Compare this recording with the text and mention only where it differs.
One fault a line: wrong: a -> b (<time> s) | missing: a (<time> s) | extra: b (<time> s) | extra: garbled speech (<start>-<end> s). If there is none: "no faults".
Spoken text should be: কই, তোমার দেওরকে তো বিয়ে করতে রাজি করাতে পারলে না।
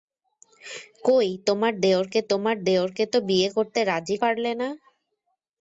extra: তোমার দেওরকে (2.3 s)
missing: করাতে (4.2 s)